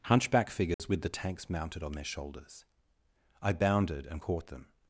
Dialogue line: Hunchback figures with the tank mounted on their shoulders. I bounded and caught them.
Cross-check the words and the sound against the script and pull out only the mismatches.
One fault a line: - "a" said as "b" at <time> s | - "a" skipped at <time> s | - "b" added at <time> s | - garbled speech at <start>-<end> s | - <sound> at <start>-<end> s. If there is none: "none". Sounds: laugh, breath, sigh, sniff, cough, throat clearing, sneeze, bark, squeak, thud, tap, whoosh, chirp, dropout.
- dropout at 0.7-0.8 s
- "tank" said as "tanks" at 1.1 s